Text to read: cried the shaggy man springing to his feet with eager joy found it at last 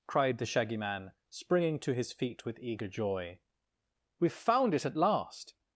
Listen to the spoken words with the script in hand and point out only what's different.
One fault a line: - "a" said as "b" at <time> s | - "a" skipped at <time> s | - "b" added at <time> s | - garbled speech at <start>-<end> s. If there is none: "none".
- "we've" added at 4.2 s